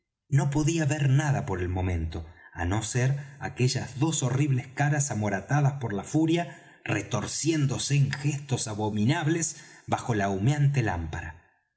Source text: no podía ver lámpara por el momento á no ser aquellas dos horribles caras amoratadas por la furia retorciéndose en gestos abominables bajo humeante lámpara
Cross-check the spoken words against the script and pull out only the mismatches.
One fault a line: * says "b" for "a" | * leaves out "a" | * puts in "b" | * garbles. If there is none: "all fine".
* says "nada" for "lámpara"
* puts in "la"